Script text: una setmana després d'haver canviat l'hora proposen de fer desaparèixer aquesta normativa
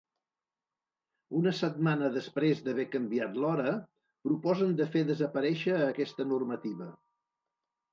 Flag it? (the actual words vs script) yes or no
no